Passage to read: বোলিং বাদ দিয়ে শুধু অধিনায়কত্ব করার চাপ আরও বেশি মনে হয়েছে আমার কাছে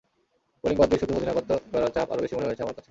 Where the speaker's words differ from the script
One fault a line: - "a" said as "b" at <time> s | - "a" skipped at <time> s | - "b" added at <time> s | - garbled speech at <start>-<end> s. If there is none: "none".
none